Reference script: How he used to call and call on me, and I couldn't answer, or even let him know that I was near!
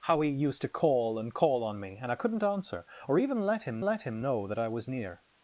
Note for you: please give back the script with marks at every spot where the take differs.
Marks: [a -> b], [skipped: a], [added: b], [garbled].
How he used to call and call on me, and I couldn't answer, or even let him [added: let him] know that I was near!